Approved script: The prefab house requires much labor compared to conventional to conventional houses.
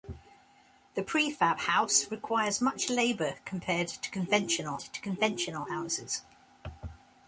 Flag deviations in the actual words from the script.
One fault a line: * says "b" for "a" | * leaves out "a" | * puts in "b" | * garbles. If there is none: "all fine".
all fine